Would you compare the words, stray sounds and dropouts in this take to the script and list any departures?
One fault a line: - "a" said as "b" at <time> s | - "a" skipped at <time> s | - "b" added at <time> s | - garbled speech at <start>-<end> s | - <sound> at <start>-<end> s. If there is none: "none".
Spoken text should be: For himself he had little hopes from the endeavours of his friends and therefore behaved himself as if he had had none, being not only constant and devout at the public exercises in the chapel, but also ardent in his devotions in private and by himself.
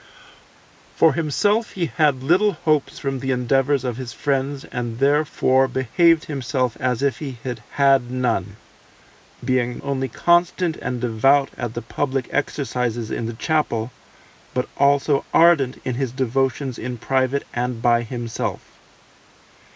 - "not" skipped at 9.8 s